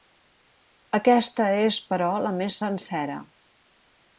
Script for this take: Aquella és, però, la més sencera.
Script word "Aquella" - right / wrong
wrong